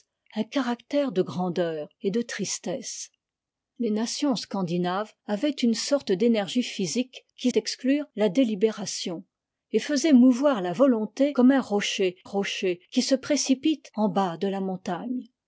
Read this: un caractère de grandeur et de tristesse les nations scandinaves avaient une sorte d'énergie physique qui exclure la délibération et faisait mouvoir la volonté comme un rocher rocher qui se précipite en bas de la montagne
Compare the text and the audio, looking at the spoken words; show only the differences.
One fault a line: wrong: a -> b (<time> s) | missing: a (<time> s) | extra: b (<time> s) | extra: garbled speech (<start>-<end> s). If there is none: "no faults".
no faults